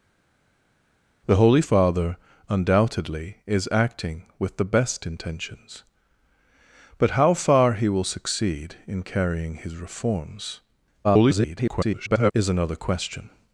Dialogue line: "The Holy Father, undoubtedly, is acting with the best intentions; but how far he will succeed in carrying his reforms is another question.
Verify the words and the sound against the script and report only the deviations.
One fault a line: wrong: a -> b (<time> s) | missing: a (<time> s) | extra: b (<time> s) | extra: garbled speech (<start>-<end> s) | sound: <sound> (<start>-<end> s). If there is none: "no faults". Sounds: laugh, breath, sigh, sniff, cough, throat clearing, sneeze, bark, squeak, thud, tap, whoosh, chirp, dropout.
extra: garbled speech (11.0-12.3 s)